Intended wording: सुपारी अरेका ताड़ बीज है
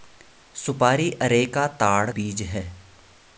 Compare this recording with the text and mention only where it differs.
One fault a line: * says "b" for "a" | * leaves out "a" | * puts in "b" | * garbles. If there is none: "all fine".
all fine